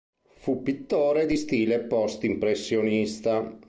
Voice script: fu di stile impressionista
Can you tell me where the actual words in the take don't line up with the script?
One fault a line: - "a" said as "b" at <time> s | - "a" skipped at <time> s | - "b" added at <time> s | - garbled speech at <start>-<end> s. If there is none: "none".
- "pittore" added at 0.6 s
- "post" added at 1.8 s